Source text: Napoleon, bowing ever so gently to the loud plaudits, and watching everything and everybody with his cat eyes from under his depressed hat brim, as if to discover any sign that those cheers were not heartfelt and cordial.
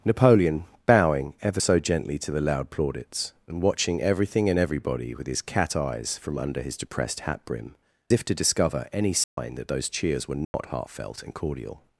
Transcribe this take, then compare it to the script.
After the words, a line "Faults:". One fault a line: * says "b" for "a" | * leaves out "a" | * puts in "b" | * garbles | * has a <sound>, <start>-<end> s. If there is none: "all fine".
Napoleon, bowing ever so gently to the loud plaudits, and watching everything and everybody with his cat eyes from under his depressed hat brim, if to discover any sign that those cheers were not heartfelt and cordial.
Faults:
* leaves out "as"
* has a dropout, 9.2-9.4 s
* has a dropout, 10.4-10.5 s